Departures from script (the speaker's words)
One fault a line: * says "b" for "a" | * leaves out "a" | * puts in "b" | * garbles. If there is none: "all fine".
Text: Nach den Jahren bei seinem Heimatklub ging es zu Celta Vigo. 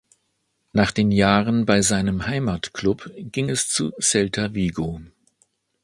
all fine